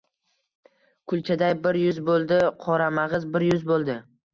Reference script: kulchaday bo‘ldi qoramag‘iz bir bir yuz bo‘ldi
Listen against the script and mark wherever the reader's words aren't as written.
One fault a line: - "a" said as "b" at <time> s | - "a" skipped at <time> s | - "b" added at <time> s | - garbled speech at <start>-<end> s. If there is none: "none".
- "bir yuz" added at 1.7 s
- "bir" skipped at 3.5 s